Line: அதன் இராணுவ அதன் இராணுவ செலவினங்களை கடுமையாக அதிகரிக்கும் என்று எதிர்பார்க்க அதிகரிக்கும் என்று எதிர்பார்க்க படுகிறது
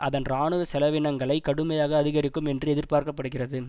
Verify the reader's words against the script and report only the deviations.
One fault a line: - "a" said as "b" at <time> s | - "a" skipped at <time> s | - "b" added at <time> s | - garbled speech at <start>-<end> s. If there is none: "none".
- "அதன் இராணுவ" skipped at 0.6 s
- "அதிகரிக்கும் என்று எதிர்பார்க்க" skipped at 3.1 s